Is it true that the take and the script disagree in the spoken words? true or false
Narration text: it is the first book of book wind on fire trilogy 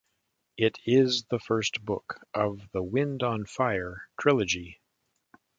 true